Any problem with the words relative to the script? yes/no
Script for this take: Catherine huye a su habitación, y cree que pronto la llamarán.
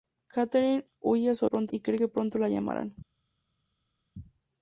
yes